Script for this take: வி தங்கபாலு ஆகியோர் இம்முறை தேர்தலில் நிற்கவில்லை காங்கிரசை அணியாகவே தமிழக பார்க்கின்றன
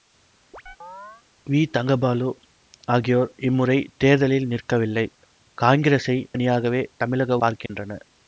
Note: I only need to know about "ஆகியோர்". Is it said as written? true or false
true